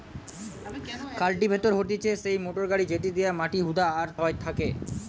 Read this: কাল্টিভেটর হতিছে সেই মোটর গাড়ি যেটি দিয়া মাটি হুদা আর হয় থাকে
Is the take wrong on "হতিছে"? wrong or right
right